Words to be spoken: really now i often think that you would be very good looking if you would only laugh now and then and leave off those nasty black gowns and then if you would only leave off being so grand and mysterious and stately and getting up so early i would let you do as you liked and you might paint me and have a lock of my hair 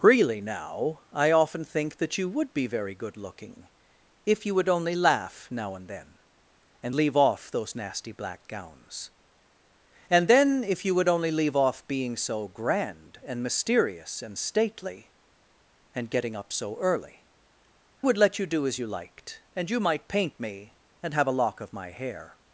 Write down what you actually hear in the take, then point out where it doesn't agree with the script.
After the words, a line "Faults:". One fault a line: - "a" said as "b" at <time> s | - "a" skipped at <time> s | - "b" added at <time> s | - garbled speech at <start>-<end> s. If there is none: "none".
really now i often think that you would be very good looking if you would only laugh now and then and leave off those nasty black gowns and then if you would only leave off being so grand and mysterious and stately and getting up so early would let you do as you liked and you might paint me and have a lock of my hair
Faults:
- "i" skipped at 17.2 s